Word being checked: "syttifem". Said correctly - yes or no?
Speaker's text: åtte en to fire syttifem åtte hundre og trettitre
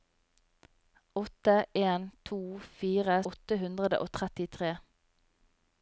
no